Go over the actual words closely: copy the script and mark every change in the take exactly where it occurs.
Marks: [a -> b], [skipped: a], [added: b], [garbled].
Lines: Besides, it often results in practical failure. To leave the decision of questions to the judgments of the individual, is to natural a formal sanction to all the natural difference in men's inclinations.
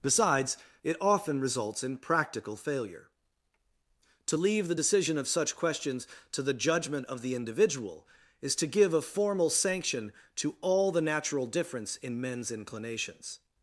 Besides, it often results in practical failure. To leave the decision of [added: such] questions to the [judgments -> judgment] of the individual, is to [natural -> give] a formal sanction to all the natural difference in men's inclinations.